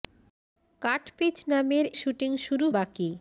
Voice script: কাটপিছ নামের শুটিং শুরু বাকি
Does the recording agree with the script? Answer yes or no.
yes